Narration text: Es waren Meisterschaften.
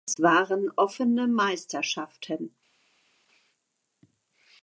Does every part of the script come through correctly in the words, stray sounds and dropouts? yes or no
no